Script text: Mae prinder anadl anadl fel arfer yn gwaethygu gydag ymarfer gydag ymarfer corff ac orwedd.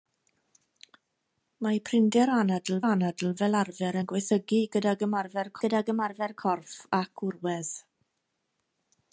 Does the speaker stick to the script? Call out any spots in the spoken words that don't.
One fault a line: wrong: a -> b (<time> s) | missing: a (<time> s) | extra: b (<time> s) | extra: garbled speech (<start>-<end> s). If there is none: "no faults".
no faults